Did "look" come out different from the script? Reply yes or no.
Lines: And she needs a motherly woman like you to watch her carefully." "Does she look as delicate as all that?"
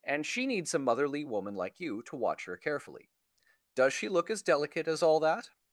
no